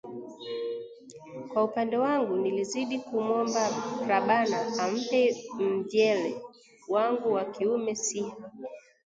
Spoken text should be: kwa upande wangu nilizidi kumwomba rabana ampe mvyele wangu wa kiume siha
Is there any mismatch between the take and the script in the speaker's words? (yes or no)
no